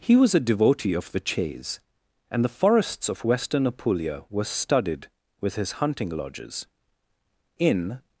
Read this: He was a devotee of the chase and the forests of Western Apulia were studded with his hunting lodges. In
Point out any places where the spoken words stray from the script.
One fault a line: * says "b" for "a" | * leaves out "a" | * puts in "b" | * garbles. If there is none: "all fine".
all fine